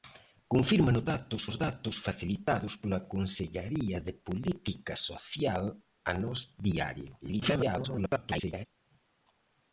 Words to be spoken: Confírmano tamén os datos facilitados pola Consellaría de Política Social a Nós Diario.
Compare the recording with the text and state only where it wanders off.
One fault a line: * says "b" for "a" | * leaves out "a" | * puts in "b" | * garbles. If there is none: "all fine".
* says "datos" for "tamén"
* garbles